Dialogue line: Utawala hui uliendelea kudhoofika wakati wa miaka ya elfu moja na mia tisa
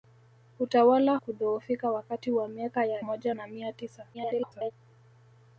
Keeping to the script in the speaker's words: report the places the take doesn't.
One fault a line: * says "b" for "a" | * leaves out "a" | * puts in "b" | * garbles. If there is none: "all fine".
* leaves out "hui uliendelea"
* leaves out "elfu"
* garbles